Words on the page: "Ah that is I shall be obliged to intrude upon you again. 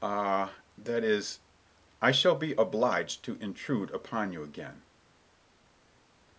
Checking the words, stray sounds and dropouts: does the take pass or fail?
pass